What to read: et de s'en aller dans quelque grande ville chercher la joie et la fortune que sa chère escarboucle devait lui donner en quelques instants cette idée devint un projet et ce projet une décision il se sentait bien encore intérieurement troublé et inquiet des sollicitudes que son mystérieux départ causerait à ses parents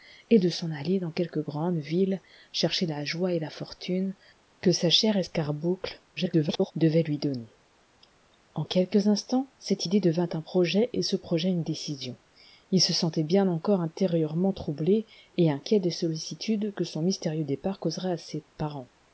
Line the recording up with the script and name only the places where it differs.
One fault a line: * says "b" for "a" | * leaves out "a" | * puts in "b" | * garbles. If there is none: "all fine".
* garbles